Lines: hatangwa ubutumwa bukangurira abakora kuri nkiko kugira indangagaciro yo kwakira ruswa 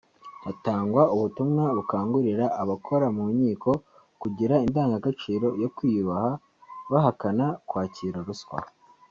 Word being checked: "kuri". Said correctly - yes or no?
no